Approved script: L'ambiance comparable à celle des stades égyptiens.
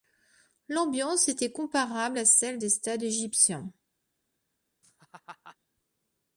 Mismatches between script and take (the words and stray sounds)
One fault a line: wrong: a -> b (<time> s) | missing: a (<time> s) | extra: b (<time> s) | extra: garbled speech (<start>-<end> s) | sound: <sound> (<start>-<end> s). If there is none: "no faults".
extra: était (1.3 s)
sound: laugh (4.8-5.6 s)